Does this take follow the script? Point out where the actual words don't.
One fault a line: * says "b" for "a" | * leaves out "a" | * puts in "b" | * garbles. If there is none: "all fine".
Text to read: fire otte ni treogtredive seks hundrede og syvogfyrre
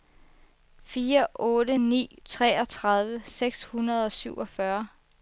all fine